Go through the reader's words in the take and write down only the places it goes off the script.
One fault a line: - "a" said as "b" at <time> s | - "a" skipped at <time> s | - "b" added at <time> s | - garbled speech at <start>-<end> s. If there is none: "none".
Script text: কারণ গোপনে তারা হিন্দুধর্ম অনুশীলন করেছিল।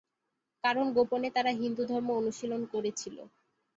none